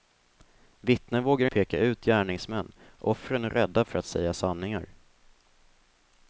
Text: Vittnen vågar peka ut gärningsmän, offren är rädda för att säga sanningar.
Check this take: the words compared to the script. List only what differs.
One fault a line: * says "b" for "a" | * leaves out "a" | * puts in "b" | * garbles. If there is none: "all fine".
all fine